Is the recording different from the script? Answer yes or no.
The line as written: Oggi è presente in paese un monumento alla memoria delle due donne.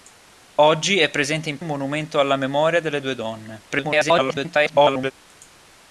yes